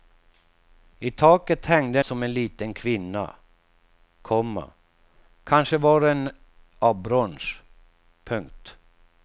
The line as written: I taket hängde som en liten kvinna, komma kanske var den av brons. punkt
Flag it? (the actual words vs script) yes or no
no